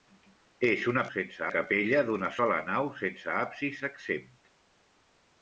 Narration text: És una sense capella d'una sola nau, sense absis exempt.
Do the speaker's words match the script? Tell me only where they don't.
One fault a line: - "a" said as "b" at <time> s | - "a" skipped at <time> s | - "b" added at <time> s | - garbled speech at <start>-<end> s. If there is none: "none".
none